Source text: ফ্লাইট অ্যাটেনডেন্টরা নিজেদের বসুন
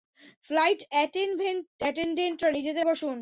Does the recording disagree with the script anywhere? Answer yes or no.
no